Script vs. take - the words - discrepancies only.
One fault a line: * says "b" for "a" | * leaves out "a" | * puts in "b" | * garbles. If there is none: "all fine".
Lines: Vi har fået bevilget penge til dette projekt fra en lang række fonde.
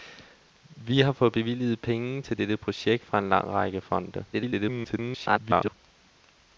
* garbles